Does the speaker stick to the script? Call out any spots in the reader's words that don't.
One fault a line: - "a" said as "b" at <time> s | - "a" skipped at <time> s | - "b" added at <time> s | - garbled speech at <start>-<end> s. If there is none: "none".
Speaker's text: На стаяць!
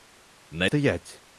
none